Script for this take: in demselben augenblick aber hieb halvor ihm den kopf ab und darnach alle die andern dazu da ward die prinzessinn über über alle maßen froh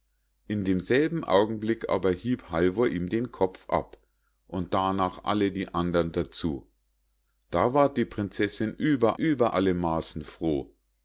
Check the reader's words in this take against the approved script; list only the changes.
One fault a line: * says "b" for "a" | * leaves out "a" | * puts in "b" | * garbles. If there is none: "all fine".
all fine